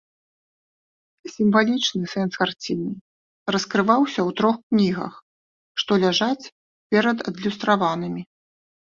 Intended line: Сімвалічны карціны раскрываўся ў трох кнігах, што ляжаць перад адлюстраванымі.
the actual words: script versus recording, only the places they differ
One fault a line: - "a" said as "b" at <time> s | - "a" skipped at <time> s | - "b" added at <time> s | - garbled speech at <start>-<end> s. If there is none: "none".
- "сэнс" added at 2.1 s